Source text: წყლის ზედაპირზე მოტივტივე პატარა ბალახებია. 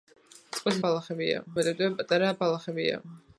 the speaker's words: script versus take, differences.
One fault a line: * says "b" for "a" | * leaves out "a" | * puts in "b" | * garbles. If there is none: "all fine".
* says "ბალახებია" for "ზედაპირზე"